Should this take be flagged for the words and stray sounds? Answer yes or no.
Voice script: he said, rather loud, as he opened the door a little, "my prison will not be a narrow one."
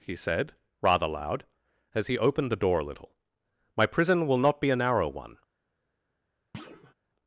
yes